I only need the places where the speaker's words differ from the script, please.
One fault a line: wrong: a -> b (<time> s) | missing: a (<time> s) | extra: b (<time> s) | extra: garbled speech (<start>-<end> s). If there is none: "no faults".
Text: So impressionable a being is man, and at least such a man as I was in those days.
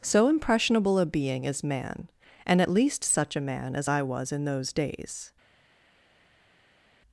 no faults